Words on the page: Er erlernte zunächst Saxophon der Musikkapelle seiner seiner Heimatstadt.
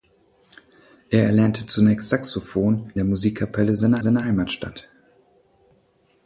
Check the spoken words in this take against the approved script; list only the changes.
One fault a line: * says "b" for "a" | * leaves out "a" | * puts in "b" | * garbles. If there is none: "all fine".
all fine